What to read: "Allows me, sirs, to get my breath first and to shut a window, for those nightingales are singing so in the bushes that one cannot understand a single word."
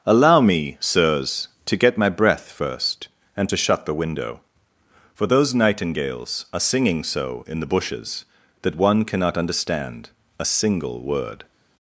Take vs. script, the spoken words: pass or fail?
fail